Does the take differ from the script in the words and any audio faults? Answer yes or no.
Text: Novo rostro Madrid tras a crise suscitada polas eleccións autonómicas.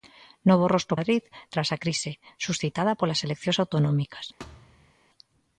yes